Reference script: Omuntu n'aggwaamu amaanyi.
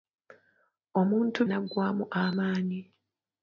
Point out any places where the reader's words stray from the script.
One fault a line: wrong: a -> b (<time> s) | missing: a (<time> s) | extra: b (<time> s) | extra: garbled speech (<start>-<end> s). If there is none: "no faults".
no faults